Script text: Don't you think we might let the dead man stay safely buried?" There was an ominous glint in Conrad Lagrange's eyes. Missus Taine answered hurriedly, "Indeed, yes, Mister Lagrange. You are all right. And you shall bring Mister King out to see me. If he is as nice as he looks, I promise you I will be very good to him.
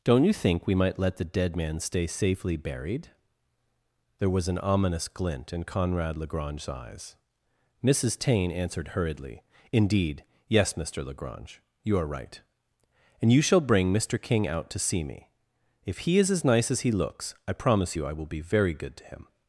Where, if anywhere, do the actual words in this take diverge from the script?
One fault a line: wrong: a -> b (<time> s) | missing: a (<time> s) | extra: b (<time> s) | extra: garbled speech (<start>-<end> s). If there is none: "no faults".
missing: all (12.1 s)